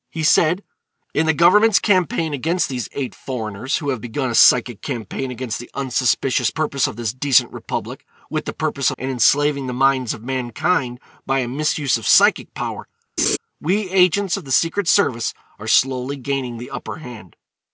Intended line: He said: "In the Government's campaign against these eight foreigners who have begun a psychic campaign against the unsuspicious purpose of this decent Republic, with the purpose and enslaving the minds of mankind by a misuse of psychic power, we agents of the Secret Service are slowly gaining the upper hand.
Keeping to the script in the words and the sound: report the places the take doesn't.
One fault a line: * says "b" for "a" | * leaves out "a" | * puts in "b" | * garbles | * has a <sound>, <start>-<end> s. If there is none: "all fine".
* has a laugh, 13.2-13.4 s